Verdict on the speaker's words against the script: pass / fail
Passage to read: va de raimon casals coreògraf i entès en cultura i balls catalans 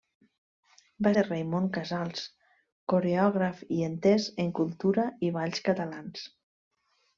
pass